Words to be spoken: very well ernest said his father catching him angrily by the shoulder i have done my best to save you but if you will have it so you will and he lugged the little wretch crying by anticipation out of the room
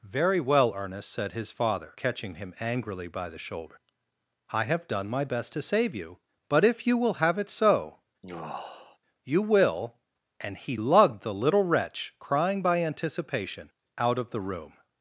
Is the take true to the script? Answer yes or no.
yes